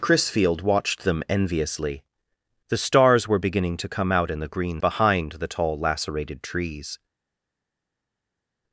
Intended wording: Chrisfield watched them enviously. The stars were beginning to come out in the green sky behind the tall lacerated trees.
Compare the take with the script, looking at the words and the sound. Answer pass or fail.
fail